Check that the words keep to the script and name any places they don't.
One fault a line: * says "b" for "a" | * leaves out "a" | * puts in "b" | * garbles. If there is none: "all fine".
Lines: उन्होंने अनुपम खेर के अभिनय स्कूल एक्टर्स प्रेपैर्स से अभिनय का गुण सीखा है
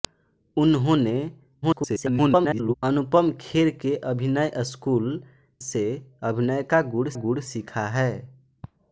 * garbles
* leaves out "एक्टर्स प्रेपैर्स"
* puts in "गुण"